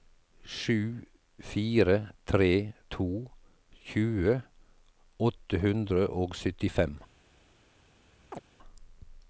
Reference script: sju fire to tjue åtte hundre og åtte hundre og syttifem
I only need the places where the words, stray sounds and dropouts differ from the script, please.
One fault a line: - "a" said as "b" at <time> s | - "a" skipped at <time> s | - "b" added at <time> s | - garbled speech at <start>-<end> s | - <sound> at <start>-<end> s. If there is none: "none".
- "tre" added at 2.3 s
- "åtte hundre og" skipped at 6.3 s
- chirp at 8.3-8.4 s